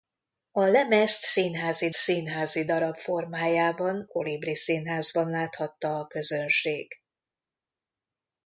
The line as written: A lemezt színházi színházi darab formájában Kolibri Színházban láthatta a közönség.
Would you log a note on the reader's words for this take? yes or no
no